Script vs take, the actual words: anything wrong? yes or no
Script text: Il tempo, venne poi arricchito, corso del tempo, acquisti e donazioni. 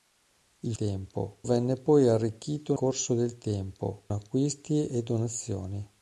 no